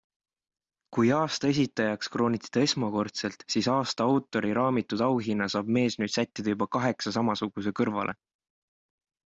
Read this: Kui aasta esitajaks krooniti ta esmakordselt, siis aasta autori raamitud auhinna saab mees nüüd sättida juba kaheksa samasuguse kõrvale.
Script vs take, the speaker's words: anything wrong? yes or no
no